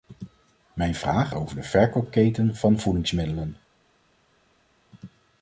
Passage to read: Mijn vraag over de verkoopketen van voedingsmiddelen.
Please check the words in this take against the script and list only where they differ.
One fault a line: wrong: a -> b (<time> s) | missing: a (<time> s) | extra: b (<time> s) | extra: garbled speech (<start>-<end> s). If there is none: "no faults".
no faults